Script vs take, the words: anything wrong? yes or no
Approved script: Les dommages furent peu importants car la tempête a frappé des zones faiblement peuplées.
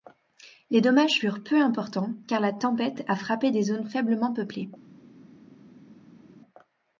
no